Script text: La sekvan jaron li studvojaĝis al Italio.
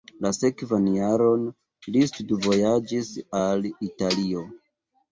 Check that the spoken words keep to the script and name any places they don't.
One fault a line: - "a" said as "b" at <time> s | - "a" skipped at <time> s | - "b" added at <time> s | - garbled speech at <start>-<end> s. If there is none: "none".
none